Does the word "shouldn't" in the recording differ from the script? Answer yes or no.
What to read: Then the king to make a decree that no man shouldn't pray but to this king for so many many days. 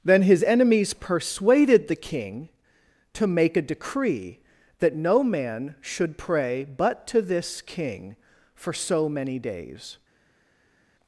yes